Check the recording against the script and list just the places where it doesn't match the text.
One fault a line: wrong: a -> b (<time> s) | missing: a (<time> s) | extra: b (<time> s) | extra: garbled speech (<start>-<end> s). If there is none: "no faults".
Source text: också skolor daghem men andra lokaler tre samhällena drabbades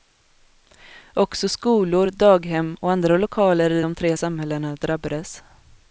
wrong: men -> och (2.8 s)
extra: i de (3.7 s)